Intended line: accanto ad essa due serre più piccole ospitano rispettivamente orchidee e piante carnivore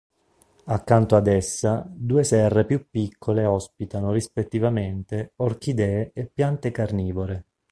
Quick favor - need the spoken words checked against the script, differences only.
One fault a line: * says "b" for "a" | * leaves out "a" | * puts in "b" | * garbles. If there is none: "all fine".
all fine